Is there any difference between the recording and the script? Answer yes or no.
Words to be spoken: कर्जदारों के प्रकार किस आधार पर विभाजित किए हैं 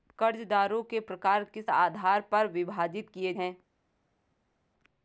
no